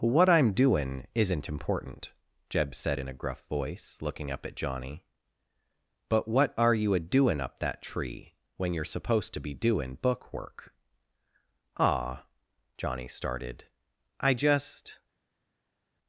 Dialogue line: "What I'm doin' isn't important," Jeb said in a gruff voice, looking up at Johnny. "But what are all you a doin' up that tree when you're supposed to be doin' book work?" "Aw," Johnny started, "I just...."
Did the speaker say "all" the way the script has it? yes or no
no